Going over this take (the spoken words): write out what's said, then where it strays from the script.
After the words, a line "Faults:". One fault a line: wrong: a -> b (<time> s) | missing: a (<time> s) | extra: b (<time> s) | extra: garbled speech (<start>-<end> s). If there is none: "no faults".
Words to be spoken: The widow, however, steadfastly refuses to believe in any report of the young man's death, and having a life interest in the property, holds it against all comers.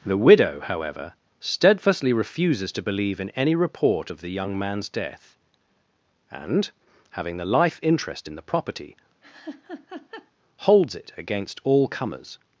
The widow, however, steadfastly refuses to believe in any report of the young man's death, and having the life interest in the property, holds it against all comers.
Faults:
wrong: a -> the (7.4 s)